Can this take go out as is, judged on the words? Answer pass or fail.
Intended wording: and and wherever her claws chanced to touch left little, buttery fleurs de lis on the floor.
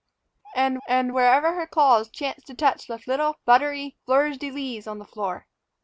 pass